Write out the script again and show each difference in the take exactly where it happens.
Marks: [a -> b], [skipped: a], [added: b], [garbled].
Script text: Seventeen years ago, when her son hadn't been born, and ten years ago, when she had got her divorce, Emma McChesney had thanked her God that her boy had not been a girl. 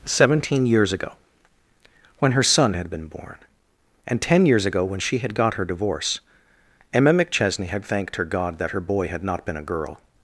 Seventeen years ago, when her son [hadn't -> had] been born, and ten years ago, when she had got her divorce, Emma McChesney had thanked her God that her boy had not been a girl.